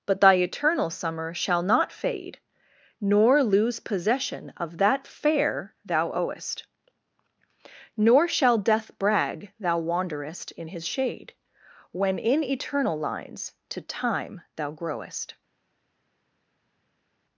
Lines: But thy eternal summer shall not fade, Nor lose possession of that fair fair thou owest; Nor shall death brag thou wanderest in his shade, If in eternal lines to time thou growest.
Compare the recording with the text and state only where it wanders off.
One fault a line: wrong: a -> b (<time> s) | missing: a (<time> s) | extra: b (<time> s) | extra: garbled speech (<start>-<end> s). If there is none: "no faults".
missing: fair (5.8 s)
wrong: If -> When (11.9 s)